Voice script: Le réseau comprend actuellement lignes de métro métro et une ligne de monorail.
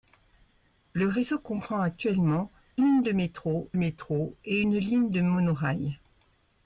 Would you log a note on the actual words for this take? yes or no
no